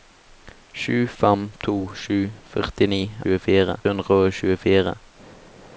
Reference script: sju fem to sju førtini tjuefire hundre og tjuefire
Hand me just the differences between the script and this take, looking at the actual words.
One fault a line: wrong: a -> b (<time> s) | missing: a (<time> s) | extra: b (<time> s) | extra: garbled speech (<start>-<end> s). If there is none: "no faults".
no faults